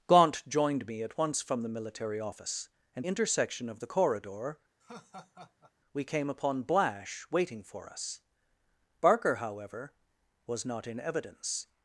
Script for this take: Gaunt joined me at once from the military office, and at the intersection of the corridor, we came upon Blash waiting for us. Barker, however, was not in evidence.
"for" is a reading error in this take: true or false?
false